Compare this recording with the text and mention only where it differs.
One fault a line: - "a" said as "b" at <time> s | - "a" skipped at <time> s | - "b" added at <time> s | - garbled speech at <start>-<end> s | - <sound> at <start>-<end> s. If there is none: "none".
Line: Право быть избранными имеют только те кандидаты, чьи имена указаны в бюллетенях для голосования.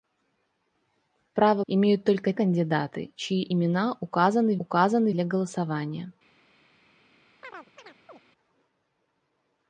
- "быть избранными" skipped at 1.6 s
- "те" skipped at 2.3 s
- "бюллетенях" said as "указаны" at 4.6 s
- chirp at 7.4-8.2 s